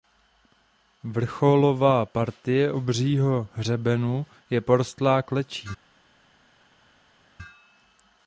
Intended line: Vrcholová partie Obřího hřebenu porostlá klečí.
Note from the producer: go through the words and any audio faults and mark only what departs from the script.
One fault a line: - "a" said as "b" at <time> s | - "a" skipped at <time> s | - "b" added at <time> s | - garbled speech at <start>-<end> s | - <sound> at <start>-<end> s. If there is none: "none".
- "je" added at 4.5 s